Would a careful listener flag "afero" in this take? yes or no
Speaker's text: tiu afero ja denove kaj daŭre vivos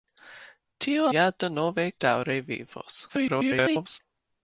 yes